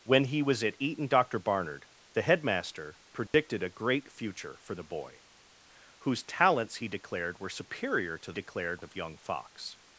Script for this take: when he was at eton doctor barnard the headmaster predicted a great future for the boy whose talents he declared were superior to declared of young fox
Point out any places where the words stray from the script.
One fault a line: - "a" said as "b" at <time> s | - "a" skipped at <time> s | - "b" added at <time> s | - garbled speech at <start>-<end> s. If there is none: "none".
none